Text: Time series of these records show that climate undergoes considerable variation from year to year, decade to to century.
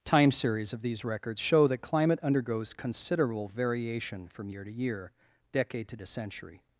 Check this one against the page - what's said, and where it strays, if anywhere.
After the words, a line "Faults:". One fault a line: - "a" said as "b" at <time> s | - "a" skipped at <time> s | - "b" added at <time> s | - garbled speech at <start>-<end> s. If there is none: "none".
Time series of these records show that climate undergoes considerable variation from year to year, decade to to century.
Faults:
none